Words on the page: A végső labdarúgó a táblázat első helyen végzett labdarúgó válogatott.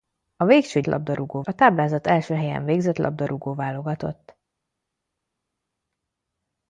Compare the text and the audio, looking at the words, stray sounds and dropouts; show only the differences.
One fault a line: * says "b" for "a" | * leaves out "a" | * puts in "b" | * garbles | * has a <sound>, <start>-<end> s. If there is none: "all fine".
all fine